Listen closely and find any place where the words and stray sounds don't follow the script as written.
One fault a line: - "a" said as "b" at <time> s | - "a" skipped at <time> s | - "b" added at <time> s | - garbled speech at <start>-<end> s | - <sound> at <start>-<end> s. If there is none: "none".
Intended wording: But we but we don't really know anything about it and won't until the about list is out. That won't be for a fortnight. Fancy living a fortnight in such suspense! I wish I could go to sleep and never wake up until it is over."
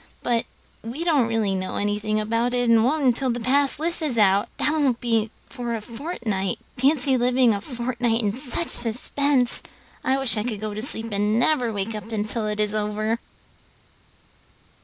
- "but we" skipped at 1.0 s
- "about" said as "pass" at 3.4 s